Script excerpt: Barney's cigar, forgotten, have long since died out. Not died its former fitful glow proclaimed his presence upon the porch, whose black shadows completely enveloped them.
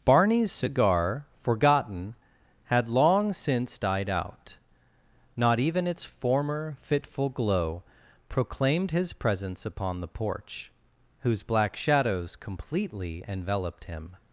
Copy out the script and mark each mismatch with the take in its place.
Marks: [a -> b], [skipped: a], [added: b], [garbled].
Barney's cigar, forgotten, [have -> had] long since died out. Not [died -> even] its former fitful glow proclaimed his presence upon the porch, whose black shadows completely enveloped [them. -> him]